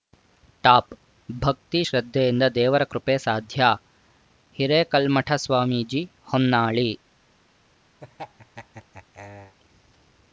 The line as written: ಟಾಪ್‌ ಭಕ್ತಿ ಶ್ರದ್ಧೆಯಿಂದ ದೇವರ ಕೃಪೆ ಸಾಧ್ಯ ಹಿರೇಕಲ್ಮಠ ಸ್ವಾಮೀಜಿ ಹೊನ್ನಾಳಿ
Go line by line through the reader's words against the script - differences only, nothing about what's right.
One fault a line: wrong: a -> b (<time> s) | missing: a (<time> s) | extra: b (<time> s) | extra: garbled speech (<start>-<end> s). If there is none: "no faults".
no faults